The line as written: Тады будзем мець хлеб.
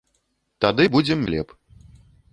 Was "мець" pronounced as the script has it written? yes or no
no